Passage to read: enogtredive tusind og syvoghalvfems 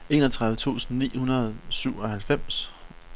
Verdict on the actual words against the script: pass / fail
fail